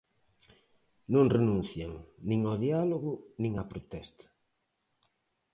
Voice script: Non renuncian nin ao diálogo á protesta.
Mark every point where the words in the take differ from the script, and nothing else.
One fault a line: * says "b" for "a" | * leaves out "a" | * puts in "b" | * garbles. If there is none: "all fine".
* puts in "nin"